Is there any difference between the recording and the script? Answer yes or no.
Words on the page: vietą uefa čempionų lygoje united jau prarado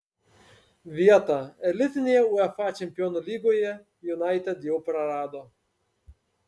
yes